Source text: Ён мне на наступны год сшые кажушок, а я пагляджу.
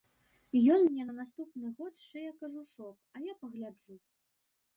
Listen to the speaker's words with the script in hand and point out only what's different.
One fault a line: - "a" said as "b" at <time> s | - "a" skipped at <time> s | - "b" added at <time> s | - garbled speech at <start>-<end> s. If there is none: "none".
none